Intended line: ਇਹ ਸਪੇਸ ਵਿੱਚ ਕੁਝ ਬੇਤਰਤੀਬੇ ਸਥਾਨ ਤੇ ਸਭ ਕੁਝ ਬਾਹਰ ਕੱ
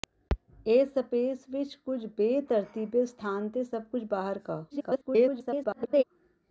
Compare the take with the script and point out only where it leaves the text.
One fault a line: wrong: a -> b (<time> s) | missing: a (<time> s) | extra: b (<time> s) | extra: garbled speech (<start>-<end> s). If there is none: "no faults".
extra: garbled speech (4.7-6.0 s)